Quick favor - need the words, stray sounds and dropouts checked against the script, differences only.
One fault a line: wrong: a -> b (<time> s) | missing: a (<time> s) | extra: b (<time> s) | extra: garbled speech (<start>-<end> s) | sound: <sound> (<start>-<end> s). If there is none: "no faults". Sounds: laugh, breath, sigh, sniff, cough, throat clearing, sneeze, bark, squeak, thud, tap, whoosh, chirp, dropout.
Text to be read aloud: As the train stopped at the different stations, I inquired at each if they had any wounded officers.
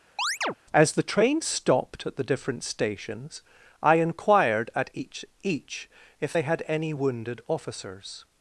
sound: chirp (0.2-0.5 s)
extra: each (5.4 s)